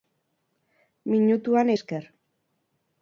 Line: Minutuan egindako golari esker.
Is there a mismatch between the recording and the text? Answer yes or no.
yes